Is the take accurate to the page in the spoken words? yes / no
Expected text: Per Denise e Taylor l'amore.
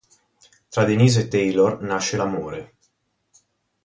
no